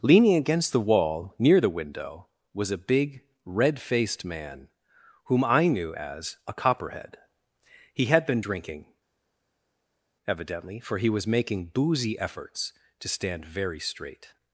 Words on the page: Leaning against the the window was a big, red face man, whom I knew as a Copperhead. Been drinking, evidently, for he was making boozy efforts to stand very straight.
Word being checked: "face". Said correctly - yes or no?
no